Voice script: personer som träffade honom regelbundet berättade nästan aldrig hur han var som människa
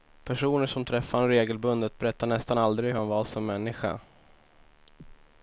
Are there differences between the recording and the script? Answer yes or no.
no